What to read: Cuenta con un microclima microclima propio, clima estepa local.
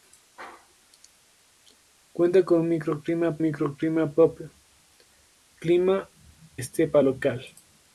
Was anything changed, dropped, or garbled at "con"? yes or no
no